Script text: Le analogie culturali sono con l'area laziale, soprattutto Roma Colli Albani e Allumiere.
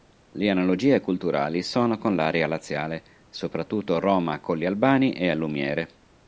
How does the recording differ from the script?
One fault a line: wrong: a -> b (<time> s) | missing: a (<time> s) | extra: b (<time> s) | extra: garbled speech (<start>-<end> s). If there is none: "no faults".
no faults